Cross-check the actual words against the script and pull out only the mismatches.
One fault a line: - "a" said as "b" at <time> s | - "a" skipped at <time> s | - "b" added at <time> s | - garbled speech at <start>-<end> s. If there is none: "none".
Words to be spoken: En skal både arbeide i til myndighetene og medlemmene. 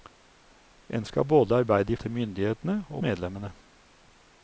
none